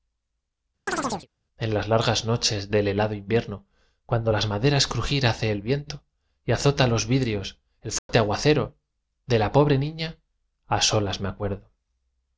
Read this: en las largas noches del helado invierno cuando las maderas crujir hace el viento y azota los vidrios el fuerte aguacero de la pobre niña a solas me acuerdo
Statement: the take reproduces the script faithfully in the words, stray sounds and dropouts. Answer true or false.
false